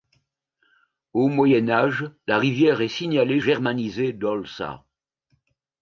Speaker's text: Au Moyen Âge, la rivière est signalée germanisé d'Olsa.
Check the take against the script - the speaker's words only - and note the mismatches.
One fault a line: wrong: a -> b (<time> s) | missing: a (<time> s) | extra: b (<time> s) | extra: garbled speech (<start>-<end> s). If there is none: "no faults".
no faults